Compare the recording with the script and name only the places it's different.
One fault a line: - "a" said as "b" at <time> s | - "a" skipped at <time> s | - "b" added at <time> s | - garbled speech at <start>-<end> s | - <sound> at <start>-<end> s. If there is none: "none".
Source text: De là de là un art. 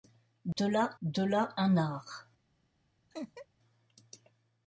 - dropout at 0.5-0.6 s
- laugh at 3.1-3.5 s